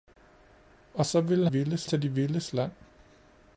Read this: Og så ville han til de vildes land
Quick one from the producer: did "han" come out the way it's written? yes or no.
no